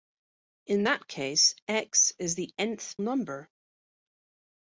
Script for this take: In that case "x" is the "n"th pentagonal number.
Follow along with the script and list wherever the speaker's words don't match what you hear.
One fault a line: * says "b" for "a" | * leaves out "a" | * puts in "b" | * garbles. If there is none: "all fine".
* leaves out "pentagonal"